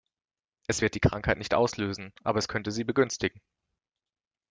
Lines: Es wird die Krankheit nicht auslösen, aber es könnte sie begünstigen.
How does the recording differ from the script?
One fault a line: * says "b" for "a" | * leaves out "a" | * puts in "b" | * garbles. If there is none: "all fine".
all fine